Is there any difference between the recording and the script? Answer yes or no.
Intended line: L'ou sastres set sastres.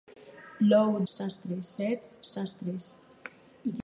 no